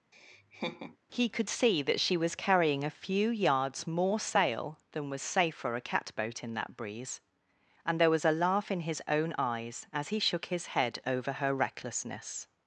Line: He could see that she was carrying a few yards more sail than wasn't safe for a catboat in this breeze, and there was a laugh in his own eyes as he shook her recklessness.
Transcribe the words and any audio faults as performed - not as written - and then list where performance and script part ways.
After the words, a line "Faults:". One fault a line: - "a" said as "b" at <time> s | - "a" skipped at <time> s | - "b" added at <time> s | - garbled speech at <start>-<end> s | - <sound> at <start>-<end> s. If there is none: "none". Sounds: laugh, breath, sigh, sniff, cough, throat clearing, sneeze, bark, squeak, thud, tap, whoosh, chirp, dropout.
He could see that she was carrying a few yards more sail than was safe for a catboat in that breeze, and there was a laugh in his own eyes as he shook his head over her recklessness.
Faults:
- laugh at 0.1-1.0 s
- "wasn't" said as "was" at 5.1 s
- "this" said as "that" at 6.5 s
- "his head over" added at 10.5 s